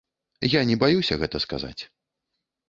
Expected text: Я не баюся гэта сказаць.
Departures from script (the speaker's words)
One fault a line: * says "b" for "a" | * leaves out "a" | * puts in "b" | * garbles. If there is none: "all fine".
all fine